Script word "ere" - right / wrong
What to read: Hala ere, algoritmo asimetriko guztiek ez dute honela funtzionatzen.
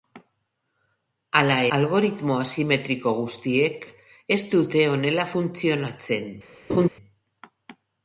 wrong